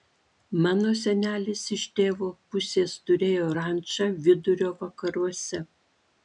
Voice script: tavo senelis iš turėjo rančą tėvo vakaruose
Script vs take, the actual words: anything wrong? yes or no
yes